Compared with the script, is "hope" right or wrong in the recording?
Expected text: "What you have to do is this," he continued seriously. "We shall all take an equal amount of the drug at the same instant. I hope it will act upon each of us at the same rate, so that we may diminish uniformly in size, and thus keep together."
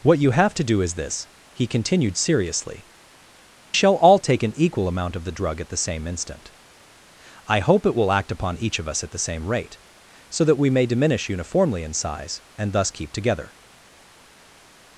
right